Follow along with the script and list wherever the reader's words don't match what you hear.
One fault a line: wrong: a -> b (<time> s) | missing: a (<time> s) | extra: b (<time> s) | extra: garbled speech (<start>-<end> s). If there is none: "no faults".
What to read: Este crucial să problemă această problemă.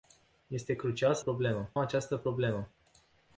no faults